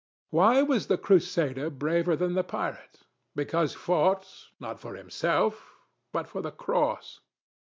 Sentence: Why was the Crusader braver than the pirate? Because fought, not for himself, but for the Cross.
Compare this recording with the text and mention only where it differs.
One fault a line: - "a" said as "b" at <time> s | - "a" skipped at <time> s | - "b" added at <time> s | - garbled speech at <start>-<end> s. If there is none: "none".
none